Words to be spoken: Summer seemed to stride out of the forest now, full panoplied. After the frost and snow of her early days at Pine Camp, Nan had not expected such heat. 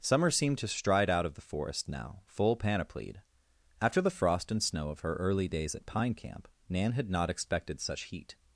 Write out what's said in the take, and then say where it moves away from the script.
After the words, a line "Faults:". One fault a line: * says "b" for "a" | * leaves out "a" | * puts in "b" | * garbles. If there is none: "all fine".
Summer seemed to stride out of the forest now, full panoplied. After the frost and snow of her early days at Pine Camp, Nan had not expected such heat.
Faults:
all fine